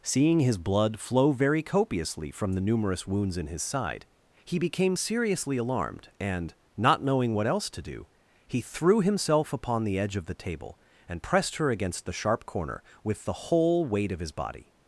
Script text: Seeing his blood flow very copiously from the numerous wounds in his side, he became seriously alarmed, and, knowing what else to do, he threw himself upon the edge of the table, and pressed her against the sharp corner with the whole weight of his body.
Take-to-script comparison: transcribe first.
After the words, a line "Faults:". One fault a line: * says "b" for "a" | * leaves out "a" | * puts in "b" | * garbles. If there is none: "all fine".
Seeing his blood flow very copiously from the numerous wounds in his side, he became seriously alarmed, and, not knowing what else to do, he threw himself upon the edge of the table, and pressed her against the sharp corner with the whole weight of his body.
Faults:
* puts in "not"